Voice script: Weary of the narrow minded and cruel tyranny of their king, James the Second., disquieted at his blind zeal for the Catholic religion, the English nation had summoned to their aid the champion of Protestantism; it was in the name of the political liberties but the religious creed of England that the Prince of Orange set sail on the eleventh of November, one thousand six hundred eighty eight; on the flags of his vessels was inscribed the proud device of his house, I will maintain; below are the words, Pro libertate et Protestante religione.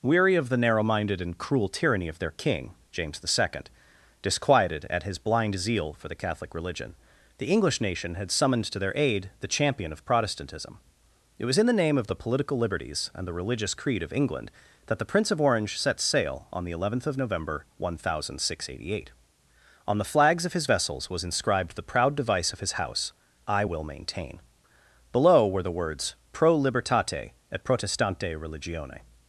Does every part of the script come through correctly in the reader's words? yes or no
no